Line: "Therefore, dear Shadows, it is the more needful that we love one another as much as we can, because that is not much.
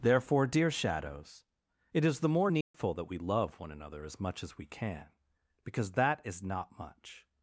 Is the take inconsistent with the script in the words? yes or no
no